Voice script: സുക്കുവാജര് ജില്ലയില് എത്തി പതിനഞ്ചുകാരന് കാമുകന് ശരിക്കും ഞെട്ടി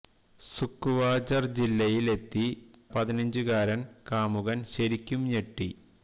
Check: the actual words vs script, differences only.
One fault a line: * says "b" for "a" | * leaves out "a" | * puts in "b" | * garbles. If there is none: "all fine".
all fine